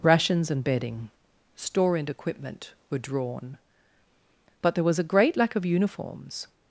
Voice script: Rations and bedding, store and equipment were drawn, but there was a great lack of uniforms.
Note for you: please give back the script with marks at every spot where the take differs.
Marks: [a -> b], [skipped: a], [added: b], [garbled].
Rations and bedding, store and equipment were drawn, but there was a great lack of uniforms.